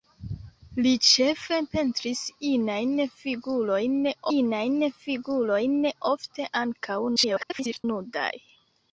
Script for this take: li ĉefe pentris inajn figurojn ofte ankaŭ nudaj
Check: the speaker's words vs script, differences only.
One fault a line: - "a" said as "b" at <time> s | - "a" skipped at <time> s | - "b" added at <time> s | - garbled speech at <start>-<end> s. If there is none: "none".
- "inajn figurojn" added at 4.4 s
- garbled speech at 7.2-7.8 s